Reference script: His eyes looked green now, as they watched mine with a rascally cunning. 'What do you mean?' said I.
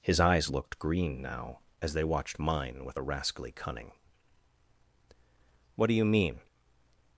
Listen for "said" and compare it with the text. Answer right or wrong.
wrong